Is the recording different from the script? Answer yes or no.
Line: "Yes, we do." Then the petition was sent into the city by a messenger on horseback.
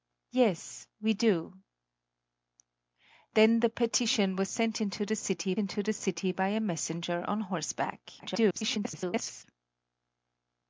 yes